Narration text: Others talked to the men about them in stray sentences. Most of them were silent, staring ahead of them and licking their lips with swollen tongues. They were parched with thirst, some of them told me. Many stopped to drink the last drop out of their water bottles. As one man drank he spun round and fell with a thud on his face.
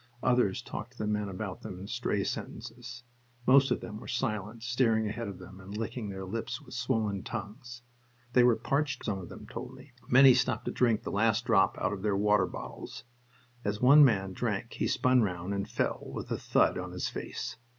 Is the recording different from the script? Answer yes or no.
yes